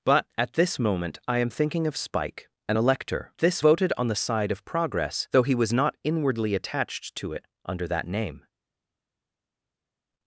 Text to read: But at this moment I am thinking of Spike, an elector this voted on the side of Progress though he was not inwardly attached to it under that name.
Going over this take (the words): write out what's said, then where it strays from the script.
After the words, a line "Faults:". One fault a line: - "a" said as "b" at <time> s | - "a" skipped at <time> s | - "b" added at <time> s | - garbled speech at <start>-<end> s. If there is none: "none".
But at this moment I am thinking of Spike, an elector this voted on the side of Progress though he was not inwardly attached to it under that name.
Faults:
none